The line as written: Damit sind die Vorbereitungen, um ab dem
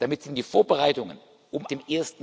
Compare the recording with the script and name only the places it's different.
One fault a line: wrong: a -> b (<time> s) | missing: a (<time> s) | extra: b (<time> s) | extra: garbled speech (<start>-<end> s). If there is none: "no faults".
missing: ab (1.7 s)